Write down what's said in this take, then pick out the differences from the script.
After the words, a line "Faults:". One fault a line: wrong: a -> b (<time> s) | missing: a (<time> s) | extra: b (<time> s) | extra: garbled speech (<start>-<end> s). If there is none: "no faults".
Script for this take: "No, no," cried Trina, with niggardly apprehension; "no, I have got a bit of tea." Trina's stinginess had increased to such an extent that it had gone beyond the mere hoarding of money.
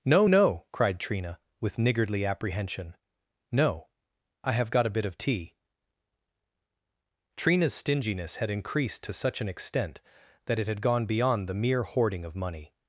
"No, no," cried Trina, with niggardly apprehension; "no, I have got a bit of tea." Trina's stinginess had increased to such an extent that it had gone beyond the mere hoarding of money.
Faults:
no faults